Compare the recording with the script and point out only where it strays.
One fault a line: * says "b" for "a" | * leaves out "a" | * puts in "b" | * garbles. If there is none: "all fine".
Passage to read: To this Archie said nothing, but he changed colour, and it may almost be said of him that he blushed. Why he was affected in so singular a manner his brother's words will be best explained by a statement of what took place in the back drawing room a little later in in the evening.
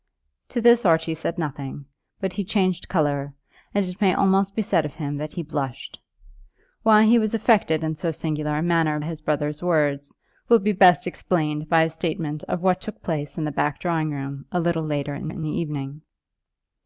all fine